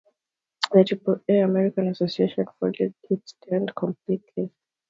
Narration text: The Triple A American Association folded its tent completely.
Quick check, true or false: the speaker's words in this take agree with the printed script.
true